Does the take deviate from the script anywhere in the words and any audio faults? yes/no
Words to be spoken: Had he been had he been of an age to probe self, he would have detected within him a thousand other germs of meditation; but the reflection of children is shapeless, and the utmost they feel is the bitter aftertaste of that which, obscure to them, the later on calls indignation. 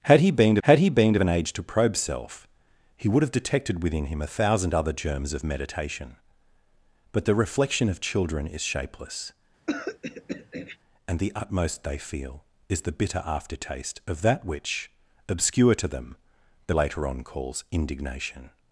yes